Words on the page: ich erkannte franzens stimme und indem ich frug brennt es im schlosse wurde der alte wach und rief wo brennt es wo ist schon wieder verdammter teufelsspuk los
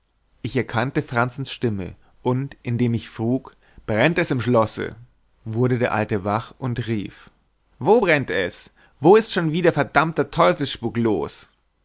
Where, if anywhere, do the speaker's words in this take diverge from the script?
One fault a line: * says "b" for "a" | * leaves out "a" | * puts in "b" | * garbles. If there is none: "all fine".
all fine